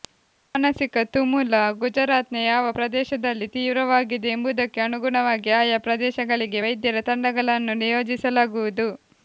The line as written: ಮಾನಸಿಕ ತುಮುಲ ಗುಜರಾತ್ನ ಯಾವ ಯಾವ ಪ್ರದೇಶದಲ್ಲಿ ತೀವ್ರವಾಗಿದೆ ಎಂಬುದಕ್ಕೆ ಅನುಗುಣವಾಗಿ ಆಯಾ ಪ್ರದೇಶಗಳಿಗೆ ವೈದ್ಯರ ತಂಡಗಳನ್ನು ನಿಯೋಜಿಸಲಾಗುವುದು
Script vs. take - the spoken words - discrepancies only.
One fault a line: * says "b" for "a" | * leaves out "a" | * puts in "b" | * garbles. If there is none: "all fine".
* leaves out "ಯಾವ"